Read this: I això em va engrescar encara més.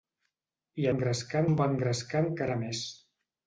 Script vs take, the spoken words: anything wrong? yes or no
yes